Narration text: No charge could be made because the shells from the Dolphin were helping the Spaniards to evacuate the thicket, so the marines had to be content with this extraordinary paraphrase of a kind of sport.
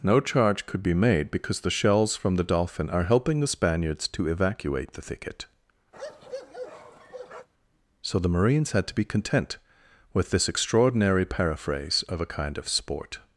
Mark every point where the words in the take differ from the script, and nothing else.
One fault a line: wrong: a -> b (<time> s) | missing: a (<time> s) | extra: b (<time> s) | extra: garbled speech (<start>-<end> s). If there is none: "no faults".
wrong: were -> are (2.9 s)